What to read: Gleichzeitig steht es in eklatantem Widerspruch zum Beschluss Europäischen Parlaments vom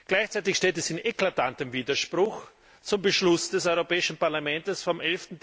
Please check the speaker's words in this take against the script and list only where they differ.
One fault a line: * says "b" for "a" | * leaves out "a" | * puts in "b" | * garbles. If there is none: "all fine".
* puts in "des"